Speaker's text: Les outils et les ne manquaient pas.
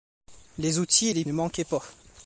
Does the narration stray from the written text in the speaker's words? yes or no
no